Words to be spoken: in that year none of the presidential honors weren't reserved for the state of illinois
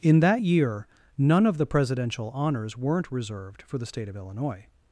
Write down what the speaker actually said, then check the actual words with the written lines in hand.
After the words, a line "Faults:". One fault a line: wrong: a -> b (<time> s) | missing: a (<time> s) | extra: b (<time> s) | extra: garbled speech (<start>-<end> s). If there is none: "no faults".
in that year none of the presidential honors weren't reserved for the state of illinois
Faults:
no faults